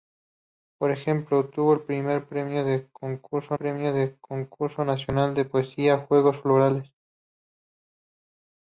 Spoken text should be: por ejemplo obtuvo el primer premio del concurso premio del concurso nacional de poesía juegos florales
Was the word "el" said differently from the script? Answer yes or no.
no